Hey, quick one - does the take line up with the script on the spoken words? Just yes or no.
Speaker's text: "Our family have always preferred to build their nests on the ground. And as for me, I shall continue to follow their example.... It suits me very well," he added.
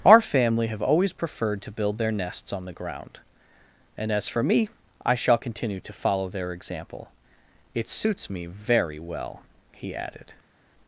yes